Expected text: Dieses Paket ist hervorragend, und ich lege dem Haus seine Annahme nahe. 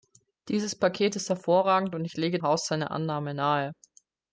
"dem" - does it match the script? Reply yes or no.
no